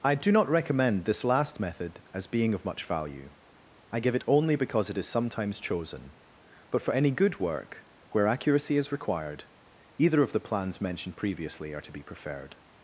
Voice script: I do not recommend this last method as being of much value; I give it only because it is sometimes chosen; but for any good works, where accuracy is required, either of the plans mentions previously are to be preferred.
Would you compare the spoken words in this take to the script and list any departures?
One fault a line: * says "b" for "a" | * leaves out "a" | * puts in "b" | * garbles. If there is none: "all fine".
* says "work" for "works"
* says "mentioned" for "mentions"